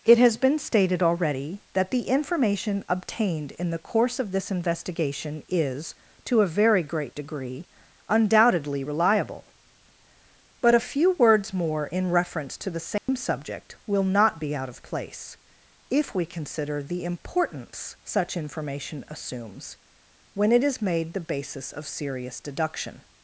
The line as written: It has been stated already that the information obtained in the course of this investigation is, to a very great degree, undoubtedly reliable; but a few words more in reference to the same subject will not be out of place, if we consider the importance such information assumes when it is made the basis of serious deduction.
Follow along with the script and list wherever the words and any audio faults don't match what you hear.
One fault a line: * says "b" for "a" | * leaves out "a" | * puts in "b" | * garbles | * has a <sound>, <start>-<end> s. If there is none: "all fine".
* has a dropout, 13.0-13.1 s